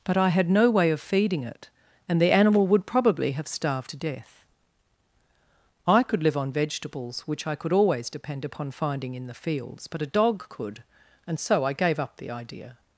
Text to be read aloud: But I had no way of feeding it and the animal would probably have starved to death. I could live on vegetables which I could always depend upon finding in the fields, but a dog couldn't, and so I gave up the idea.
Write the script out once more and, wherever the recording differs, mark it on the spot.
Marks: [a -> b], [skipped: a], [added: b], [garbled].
But I had no way of feeding it and the animal would probably have starved to death. I could live on vegetables which I could always depend upon finding in the fields, but a dog [couldn't, -> could] and so I gave up the idea.